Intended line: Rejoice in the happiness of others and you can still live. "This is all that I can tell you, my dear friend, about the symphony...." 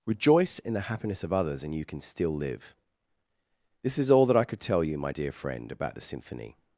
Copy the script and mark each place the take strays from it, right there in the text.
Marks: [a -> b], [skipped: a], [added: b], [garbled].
Rejoice in the happiness of others and you can still live. "This is all that I [can -> could] tell you, my dear friend, about the symphony...."